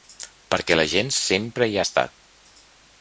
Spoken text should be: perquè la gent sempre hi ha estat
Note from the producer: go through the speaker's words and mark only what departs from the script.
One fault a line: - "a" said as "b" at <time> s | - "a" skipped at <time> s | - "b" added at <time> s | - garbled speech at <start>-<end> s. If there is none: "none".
none